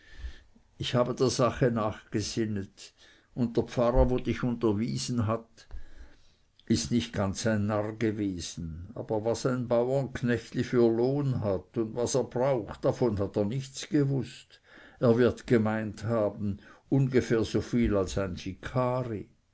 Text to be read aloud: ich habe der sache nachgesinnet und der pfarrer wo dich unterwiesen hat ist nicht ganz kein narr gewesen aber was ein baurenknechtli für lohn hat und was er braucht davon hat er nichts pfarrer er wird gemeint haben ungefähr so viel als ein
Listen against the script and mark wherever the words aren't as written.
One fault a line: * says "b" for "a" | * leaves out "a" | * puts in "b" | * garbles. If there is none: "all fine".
* says "ein" for "kein"
* says "gewußt" for "pfarrer"